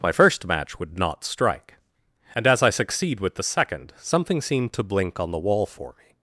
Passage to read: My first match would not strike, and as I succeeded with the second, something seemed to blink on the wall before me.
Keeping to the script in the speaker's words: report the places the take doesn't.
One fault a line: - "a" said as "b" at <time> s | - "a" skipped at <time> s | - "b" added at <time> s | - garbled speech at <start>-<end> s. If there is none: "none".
- "succeeded" said as "succeed" at 2.7 s
- "before" said as "for" at 5.7 s